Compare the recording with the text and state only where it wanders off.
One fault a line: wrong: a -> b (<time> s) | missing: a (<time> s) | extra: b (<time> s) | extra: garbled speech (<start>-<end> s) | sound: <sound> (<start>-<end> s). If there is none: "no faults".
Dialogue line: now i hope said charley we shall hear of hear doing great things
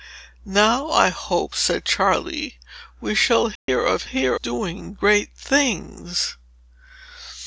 sound: dropout (3.6-3.7 s)